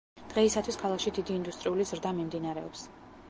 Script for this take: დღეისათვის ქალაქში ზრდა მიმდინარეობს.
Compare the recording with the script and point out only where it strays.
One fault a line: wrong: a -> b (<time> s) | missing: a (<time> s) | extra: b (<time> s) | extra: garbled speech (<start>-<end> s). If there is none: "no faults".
extra: დიდი ინდუსტრიული (1.2 s)